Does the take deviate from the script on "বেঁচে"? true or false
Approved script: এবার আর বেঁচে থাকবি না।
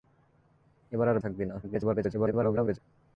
true